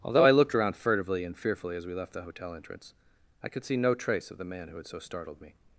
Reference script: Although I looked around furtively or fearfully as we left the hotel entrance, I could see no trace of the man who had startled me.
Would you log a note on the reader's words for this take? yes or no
yes